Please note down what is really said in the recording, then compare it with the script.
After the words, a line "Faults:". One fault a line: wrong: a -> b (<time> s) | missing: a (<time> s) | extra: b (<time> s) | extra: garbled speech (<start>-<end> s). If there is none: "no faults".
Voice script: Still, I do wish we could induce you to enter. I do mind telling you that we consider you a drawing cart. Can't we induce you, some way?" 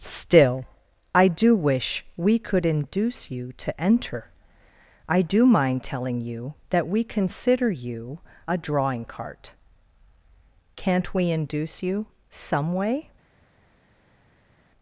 Still, I do wish we could induce you to enter. I do mind telling you that we consider you a drawing cart. Can't we induce you, some way?"
Faults:
no faults